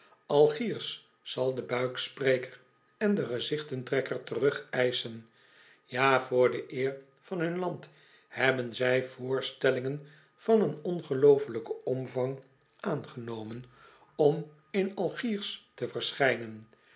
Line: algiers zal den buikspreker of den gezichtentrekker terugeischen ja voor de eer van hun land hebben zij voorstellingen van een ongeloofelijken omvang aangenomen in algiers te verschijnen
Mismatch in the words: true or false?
true